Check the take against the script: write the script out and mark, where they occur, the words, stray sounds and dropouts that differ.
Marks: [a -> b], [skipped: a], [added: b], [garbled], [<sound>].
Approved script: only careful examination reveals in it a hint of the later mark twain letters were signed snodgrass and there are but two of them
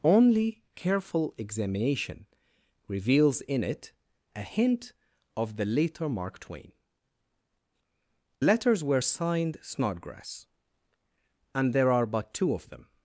only careful examination reveals in it a hint of the later mark twain letters were signed snodgrass and there are but two of them